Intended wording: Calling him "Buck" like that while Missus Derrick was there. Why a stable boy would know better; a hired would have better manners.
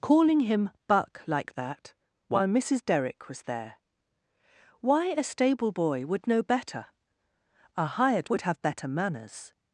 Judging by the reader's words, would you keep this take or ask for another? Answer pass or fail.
pass